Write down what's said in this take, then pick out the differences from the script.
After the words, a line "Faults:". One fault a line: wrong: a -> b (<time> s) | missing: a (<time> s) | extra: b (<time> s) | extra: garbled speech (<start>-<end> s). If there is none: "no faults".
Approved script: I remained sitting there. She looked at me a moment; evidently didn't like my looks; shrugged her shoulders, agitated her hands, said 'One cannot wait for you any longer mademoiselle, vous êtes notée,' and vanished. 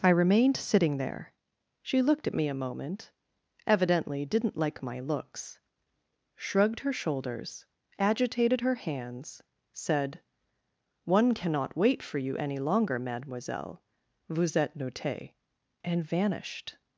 I remained sitting there. She looked at me a moment; evidently didn't like my looks; shrugged her shoulders, agitated her hands, said 'One cannot wait for you any longer mademoiselle, vous êtes notée,' and vanished.
Faults:
no faults